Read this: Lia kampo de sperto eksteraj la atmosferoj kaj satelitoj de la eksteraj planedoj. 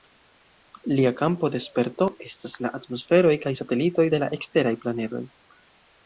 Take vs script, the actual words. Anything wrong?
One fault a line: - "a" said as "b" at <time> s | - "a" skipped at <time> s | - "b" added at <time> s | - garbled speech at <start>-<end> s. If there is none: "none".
- "eksteraj" said as "estas" at 2.3 s